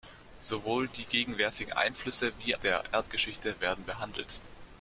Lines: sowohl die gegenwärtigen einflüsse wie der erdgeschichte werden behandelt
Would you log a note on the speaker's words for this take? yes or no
no